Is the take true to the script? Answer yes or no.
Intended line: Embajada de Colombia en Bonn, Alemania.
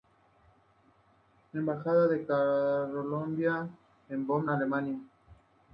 yes